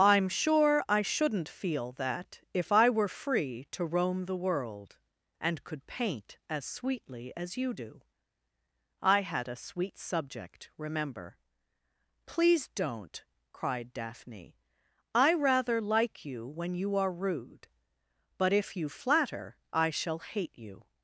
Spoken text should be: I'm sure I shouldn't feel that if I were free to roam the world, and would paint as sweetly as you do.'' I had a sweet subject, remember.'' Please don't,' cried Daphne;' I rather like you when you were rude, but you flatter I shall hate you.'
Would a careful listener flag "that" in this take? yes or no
no